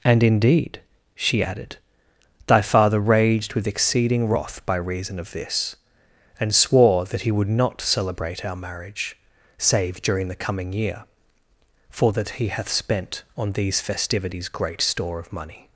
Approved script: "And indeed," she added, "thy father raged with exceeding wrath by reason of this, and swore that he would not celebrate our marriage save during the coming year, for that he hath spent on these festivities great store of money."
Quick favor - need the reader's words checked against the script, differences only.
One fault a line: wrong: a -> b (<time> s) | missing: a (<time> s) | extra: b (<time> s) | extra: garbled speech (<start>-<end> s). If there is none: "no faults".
no faults